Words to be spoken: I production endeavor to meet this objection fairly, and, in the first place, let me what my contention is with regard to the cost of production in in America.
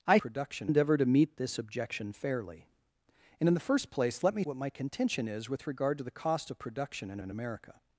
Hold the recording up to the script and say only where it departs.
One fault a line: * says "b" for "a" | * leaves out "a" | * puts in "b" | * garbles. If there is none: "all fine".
all fine